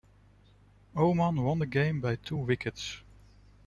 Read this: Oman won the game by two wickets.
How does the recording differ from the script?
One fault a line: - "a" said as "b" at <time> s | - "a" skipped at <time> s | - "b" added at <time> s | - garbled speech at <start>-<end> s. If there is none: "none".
none